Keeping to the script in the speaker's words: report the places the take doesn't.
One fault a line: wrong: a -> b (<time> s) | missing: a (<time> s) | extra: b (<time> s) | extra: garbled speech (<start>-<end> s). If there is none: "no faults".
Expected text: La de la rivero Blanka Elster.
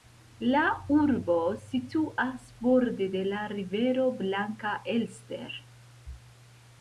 extra: urbo situas borde (1.0 s)